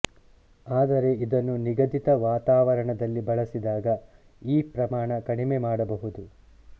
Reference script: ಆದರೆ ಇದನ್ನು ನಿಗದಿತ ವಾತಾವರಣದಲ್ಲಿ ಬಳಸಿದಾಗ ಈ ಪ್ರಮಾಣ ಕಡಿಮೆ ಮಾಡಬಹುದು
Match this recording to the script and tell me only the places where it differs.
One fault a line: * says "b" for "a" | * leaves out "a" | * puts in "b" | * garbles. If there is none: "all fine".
all fine